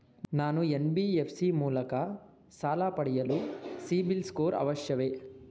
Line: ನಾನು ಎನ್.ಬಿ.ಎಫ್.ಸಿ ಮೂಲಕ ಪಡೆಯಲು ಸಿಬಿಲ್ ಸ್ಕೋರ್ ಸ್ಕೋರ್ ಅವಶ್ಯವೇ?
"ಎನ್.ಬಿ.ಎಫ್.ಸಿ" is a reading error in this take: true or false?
false